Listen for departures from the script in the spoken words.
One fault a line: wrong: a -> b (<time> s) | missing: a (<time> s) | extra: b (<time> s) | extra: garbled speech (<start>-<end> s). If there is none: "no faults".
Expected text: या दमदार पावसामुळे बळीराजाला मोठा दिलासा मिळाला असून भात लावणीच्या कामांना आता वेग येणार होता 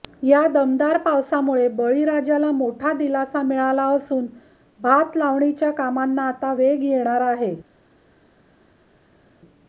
wrong: होता -> आहे (7.3 s)